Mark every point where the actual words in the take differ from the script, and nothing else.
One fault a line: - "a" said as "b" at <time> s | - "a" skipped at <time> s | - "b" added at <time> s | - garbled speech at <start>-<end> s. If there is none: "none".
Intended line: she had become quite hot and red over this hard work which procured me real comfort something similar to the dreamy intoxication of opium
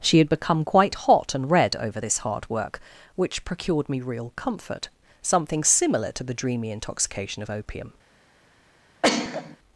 none